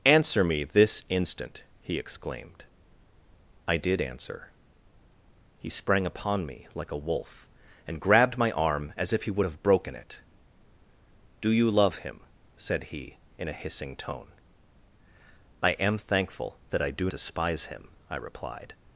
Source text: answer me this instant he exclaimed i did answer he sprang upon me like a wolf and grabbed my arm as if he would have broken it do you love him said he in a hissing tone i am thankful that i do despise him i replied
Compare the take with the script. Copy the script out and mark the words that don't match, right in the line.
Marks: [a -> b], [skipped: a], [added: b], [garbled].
answer me this instant he exclaimed i did answer he sprang upon me like a wolf and grabbed my arm as if he would have broken it do you love him said he in a hissing tone i am thankful that i do despise him i replied